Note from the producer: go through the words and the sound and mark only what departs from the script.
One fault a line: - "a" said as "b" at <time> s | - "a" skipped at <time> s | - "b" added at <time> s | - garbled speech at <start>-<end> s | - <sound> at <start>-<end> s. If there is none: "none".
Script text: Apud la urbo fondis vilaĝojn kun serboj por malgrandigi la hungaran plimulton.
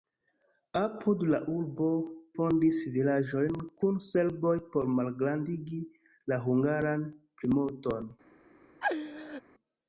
- laugh at 8.8-9.4 s